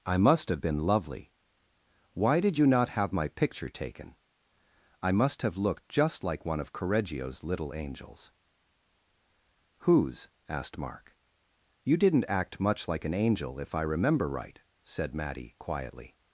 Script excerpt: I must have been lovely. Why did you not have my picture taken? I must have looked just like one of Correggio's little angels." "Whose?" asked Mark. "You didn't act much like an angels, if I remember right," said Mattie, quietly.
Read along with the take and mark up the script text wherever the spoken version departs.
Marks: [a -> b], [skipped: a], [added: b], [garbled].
I must have been lovely. Why did you not have my picture taken? I must have looked just like one of Correggio's little angels." "Whose?" asked Mark. "You didn't act much like an [angels, -> angel] if I remember right," said Mattie, quietly.